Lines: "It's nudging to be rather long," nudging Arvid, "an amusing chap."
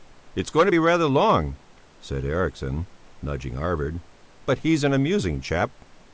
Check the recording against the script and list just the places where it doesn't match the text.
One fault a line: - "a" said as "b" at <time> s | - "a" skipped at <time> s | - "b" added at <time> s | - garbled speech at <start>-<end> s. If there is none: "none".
- "nudging" said as "going" at 0.5 s
- "said Eriksson" added at 2.0 s
- "but he's" added at 4.4 s